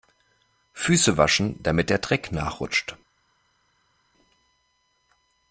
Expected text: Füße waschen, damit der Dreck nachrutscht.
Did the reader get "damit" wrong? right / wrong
right